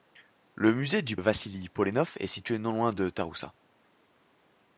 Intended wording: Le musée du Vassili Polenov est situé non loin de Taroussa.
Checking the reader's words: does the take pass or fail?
pass